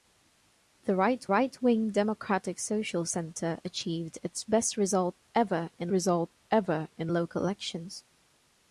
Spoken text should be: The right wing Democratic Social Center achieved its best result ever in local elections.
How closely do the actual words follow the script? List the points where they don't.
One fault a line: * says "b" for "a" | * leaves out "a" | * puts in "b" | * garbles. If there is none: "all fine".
* puts in "right"
* puts in "result ever in"